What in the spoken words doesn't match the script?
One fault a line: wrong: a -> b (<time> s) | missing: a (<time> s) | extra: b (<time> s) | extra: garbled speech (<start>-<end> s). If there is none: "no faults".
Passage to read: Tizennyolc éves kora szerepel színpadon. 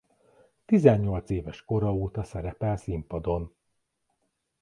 extra: óta (1.9 s)